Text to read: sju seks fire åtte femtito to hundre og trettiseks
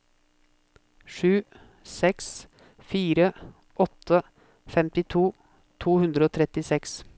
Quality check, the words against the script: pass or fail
pass